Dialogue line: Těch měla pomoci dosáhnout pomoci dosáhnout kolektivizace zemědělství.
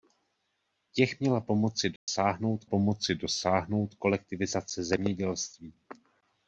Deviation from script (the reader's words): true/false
false